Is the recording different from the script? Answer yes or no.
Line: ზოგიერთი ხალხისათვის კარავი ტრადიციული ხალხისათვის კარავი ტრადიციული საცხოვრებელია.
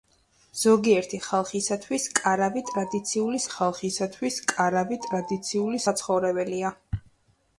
no